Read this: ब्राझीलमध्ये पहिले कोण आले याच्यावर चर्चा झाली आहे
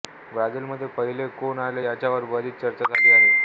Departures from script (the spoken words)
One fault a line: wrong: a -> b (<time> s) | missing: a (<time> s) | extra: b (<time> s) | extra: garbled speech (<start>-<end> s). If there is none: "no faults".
extra: बरीच (2.3 s)